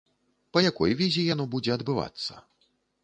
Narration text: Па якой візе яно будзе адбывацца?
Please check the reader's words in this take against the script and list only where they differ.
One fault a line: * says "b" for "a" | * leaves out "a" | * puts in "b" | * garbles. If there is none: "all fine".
all fine